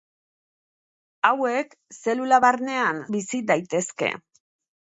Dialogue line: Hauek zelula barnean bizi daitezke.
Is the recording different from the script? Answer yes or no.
no